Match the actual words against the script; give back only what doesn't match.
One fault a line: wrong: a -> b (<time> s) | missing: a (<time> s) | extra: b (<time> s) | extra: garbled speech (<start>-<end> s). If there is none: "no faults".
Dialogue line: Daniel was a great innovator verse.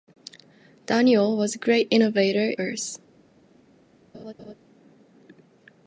no faults